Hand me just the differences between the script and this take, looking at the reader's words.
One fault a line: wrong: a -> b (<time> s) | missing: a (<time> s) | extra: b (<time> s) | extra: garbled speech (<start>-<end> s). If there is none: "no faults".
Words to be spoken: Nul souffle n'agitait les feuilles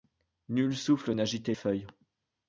missing: les (1.5 s)